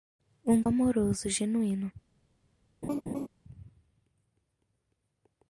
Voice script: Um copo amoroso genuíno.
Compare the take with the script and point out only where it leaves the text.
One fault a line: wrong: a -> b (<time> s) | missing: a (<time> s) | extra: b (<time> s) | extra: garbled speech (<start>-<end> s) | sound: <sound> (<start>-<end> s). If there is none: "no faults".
missing: copo (0.6 s)
sound: laugh (2.8-3.3 s)